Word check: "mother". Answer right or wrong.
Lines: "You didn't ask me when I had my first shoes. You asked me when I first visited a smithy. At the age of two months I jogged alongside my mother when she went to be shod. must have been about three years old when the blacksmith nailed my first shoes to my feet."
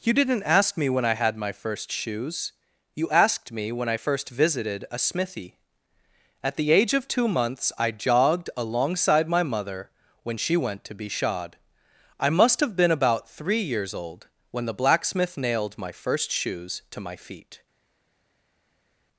right